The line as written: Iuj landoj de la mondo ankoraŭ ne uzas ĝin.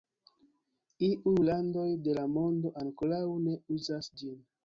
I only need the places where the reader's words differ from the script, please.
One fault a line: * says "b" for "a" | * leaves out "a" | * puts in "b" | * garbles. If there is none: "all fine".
all fine